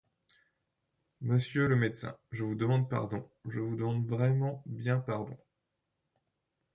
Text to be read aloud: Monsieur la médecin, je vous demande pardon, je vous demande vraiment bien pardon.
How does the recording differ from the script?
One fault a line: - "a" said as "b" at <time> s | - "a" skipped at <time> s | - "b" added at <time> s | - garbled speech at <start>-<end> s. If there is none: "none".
- "la" said as "le" at 1.7 s